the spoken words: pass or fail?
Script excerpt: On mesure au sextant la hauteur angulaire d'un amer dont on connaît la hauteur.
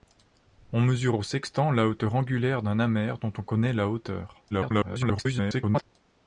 fail